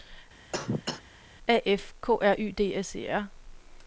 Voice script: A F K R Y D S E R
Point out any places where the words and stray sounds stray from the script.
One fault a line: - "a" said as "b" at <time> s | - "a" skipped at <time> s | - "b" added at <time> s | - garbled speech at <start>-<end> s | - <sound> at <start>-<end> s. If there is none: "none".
- cough at 0.5-1.0 s